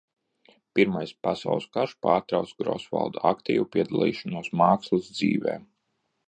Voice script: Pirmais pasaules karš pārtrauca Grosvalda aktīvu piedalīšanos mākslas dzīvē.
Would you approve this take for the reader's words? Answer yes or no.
yes